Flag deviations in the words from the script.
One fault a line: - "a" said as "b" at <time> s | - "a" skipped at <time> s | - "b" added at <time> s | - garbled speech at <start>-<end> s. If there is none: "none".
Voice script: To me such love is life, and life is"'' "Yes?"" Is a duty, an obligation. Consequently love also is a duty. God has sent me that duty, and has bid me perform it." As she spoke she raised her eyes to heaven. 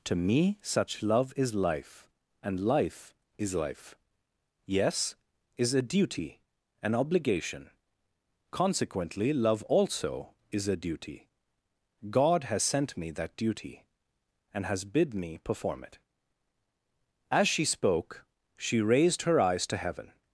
- "life" added at 3.5 s